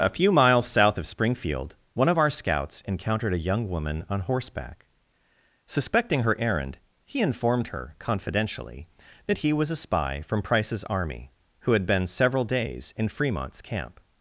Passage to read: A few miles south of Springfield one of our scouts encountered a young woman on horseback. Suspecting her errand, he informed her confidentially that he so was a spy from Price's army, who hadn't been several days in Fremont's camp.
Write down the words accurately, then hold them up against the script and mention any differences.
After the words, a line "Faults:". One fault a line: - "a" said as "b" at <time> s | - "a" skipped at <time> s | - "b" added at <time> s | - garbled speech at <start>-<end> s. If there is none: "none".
A few miles south of Springfield one of our scouts encountered a young woman on horseback. Suspecting her errand, he informed her confidentially that he was a spy from Price's army, who had been several days in Fremont's camp.
Faults:
- "so" skipped at 9.5 s
- "hadn't" said as "had" at 11.7 s